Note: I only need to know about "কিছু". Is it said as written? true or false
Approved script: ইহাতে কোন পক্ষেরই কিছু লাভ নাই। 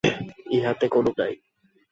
false